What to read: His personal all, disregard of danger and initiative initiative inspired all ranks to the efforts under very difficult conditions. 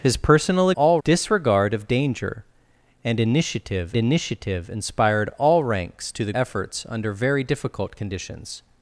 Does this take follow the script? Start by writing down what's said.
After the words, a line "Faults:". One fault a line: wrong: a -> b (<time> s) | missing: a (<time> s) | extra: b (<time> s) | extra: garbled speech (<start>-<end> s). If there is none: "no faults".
His personal all, disregard of danger and initiative initiative inspired all ranks to the efforts under very difficult conditions.
Faults:
no faults